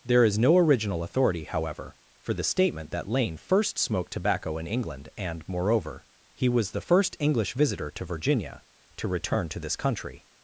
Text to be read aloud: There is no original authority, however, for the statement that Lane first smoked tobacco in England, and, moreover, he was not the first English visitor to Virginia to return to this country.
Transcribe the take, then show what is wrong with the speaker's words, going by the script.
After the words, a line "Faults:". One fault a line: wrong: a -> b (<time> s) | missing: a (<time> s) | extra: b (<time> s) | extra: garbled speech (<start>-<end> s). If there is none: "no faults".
There is no original authority, however, for the statement that Lane first smoked tobacco in England, and, moreover, he was the first English visitor to Virginia to return to this country.
Faults:
missing: not (6.7 s)